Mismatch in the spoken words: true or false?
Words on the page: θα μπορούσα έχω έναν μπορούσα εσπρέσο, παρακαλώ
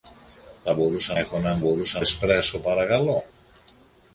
false